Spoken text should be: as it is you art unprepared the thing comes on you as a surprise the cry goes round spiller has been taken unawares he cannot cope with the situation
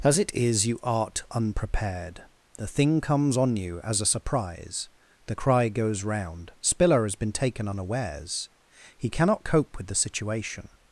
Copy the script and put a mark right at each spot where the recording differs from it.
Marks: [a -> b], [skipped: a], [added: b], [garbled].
as it is you art unprepared the thing comes on you as a surprise the cry goes round spiller has been taken unawares he cannot cope with the situation